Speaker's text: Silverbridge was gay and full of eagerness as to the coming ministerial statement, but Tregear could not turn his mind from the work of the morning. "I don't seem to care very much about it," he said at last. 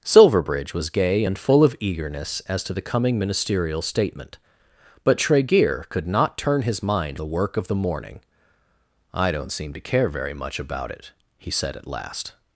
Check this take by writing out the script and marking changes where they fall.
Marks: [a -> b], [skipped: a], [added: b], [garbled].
Silverbridge was gay and full of eagerness as to the coming ministerial statement, but Tregear could not turn his mind [skipped: from] the work of the morning. "I don't seem to care very much about it," he said at last.